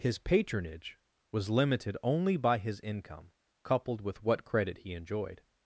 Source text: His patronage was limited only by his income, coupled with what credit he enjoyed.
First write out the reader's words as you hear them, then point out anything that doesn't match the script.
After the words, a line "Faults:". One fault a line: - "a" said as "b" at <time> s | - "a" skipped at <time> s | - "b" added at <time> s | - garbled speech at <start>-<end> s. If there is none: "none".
His patronage was limited only by his income, coupled with what credit he enjoyed.
Faults:
none